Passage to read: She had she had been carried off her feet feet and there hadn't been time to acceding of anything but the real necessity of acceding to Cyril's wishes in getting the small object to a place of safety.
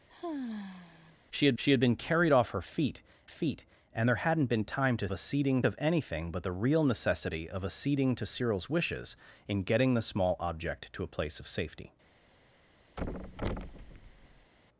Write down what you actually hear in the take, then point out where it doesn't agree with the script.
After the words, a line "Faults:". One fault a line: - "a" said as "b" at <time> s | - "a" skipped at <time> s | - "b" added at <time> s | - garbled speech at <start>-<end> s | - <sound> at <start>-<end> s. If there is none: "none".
She had she had been carried off her feet feet and there hadn't been time to acceding of anything but the real necessity of acceding to Cyril's wishes in getting the small object to a place of safety.
Faults:
- sigh at 0.1-1.2 s
- thud at 13.0-14.5 s